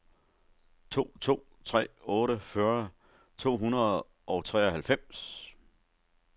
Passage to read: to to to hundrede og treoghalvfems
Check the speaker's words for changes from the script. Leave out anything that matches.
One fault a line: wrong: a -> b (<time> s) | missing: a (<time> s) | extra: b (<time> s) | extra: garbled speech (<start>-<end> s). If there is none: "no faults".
extra: tre otte fyrre (1.6 s)